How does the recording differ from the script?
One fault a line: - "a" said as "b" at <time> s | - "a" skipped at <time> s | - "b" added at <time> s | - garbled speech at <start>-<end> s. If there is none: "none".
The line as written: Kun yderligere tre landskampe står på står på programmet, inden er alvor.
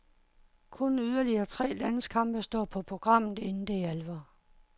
- "står på" skipped at 2.8 s
- "det" added at 3.7 s